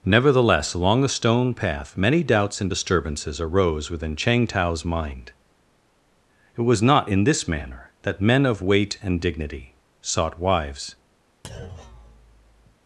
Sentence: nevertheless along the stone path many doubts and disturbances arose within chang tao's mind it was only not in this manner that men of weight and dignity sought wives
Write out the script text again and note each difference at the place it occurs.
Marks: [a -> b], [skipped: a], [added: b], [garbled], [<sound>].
nevertheless along the stone path many doubts and disturbances arose within chang tao's mind it was [skipped: only] not in this manner that men of weight and dignity sought wives [thud]